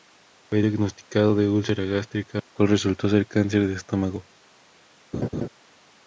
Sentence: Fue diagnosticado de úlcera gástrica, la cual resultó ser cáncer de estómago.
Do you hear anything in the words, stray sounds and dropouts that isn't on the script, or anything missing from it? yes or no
yes